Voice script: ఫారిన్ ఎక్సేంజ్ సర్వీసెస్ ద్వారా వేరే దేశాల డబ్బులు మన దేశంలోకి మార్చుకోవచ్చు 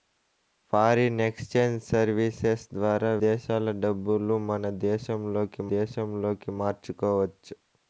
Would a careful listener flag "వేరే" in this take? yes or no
yes